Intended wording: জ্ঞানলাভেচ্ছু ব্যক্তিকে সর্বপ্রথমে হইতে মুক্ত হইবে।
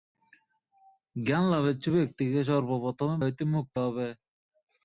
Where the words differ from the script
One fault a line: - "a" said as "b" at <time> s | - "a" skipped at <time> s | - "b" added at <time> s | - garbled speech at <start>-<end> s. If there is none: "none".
none